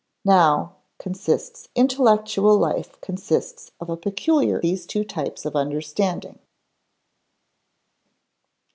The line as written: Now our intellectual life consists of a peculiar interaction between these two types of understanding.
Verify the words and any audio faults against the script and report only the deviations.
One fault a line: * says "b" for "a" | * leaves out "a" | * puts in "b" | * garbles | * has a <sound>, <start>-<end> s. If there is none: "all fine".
* says "consists" for "our"
* leaves out "interaction between"